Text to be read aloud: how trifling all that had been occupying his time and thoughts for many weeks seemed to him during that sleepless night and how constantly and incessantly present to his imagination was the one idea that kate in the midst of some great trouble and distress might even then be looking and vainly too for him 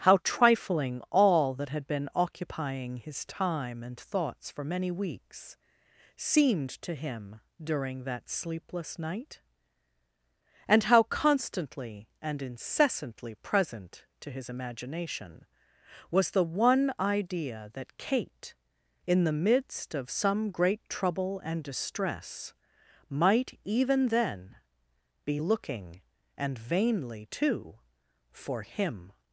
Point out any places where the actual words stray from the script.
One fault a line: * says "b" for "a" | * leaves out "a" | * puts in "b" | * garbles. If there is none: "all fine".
all fine